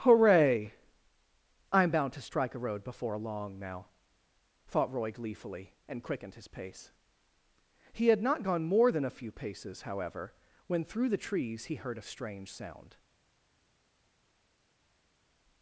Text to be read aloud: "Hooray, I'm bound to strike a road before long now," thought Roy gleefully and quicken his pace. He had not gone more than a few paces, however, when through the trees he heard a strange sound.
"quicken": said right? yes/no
no